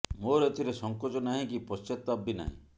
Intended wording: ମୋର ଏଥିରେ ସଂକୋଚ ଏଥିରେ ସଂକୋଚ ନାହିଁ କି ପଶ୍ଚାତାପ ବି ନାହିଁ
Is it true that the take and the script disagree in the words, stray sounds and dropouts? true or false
true